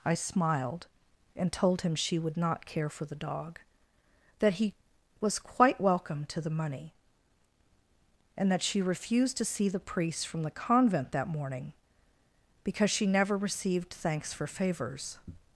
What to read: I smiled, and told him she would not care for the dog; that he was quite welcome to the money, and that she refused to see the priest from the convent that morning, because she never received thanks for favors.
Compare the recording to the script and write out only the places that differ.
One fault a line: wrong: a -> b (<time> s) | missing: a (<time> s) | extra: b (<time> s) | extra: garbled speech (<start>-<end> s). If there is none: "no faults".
no faults